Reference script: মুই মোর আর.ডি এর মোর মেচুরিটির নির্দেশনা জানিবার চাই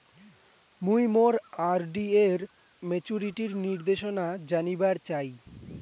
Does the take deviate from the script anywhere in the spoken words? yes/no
yes